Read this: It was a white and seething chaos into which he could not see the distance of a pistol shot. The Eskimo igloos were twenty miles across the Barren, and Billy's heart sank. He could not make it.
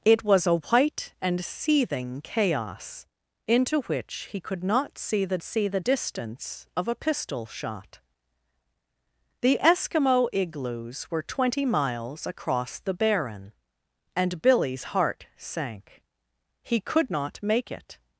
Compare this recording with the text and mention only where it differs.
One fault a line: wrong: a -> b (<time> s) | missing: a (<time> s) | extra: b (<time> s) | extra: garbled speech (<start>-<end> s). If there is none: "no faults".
extra: see the (5.4 s)